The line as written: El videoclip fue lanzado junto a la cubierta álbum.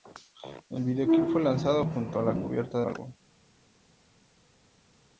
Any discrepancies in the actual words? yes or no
no